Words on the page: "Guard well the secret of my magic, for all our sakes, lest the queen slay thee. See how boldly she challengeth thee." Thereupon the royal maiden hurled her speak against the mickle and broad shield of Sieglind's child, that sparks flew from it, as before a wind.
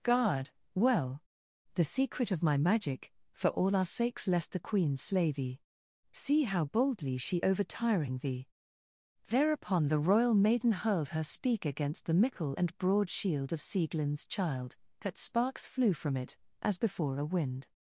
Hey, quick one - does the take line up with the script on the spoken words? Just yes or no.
no